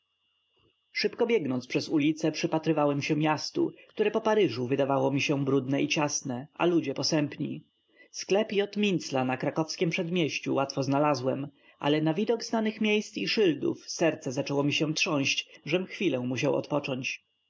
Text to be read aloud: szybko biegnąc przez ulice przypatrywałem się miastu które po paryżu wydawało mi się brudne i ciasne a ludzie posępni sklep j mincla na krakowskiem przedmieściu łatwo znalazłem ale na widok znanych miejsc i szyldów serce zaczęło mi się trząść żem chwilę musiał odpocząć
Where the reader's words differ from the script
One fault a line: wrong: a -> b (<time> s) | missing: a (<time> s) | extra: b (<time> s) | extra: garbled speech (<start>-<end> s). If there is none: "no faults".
no faults